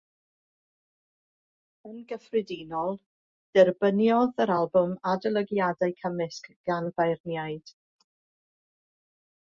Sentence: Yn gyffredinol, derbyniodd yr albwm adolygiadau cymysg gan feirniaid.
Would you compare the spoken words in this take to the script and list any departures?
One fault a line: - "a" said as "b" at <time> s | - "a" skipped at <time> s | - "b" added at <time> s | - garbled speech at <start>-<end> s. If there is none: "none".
none